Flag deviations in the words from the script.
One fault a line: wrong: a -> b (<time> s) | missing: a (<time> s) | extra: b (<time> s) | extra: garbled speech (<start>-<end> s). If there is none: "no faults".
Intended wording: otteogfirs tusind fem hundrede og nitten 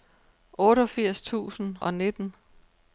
missing: fem hundrede (1.8 s)